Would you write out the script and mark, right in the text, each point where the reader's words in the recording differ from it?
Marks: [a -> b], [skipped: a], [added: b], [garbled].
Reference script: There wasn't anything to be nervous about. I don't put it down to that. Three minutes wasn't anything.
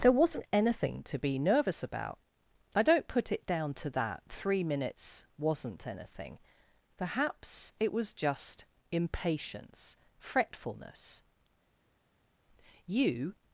There wasn't anything to be nervous about. I don't put it down to that. Three minutes wasn't anything. [added: Perhaps it was just impatience fretfulness You]